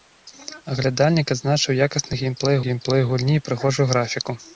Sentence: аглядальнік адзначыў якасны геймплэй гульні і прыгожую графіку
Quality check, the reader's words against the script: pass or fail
fail